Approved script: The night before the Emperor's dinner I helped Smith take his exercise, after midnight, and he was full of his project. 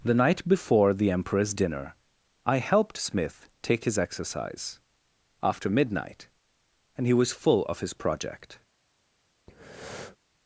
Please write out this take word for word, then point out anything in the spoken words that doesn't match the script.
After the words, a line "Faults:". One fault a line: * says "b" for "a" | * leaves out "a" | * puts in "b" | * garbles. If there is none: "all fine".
The night before the Emperor's dinner I helped Smith take his exercise, after midnight, and he was full of his project.
Faults:
all fine